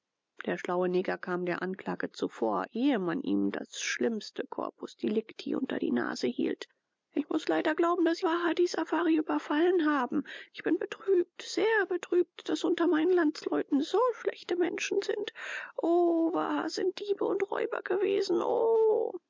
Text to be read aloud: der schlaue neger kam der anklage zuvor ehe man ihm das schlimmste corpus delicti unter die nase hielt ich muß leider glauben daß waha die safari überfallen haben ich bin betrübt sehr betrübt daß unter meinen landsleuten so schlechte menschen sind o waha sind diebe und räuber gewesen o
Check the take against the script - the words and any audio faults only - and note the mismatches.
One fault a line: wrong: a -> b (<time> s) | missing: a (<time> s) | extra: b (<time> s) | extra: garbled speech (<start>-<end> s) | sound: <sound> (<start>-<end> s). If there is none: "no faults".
no faults